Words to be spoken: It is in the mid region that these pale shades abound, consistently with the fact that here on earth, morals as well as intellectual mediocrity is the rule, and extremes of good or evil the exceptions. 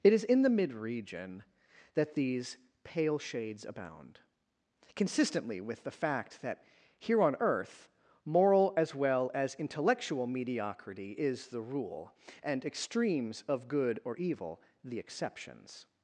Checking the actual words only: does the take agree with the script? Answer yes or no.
no